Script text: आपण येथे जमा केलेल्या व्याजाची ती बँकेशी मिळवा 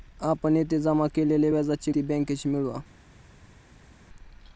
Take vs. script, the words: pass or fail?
pass